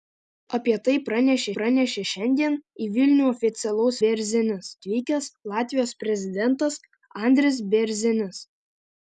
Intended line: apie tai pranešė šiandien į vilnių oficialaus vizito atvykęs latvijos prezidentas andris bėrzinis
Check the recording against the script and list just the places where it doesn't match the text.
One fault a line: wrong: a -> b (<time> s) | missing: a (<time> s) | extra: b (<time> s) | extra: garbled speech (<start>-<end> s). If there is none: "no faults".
extra: pranešė (1.6 s)
wrong: vizito -> bėrzinis (4.1 s)